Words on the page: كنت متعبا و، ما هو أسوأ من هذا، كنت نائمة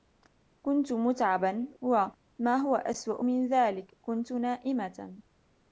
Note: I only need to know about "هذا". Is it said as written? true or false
false